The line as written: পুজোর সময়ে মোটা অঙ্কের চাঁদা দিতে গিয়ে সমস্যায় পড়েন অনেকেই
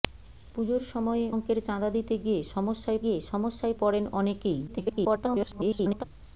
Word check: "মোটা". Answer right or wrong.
wrong